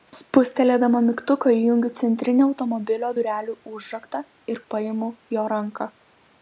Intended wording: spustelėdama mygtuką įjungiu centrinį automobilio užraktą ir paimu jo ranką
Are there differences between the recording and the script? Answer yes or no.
yes